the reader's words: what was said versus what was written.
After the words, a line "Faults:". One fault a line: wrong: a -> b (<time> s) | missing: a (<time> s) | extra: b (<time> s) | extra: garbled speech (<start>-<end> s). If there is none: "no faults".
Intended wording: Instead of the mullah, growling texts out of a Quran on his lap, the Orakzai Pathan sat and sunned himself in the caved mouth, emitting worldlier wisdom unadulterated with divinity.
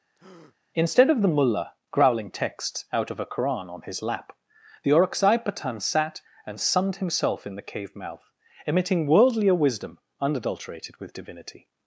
Instead of the mullah, growling texts out of a Quran on his lap, the Orakzai Pathan sat and sunned himself in the cave mouth, emitting worldlier wisdom unadulterated with divinity.
Faults:
wrong: caved -> cave (7.6 s)